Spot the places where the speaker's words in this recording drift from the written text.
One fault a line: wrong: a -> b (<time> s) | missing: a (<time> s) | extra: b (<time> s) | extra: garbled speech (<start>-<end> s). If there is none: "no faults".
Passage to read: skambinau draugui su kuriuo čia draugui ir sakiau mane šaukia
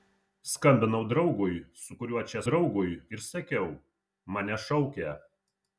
no faults